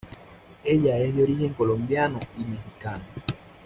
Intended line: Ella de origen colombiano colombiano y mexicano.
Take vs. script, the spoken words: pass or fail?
fail